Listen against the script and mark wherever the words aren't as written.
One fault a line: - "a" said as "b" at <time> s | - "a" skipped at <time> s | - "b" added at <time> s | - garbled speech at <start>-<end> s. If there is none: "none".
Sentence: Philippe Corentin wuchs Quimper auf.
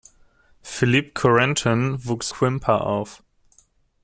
none